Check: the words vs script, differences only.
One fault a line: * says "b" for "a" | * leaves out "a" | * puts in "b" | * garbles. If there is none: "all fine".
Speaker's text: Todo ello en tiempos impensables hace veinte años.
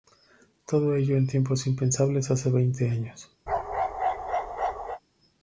all fine